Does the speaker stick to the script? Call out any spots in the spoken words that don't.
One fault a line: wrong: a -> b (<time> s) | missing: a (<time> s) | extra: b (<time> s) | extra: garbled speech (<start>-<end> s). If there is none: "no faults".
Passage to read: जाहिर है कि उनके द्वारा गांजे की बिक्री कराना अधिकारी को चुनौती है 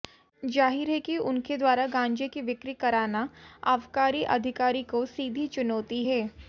extra: आबकारी (3.7 s)
extra: सीधी (5.1 s)